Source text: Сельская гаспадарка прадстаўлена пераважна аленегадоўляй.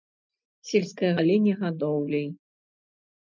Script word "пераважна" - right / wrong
wrong